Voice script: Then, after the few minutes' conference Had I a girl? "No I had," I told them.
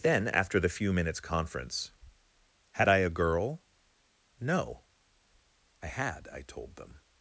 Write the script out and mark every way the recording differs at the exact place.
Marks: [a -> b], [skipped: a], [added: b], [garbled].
Then, after the few minutes' conference Had I a girl? "No I had," I told them.